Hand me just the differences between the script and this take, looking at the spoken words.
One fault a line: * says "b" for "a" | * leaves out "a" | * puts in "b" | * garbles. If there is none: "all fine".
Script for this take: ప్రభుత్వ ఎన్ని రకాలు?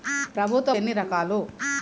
all fine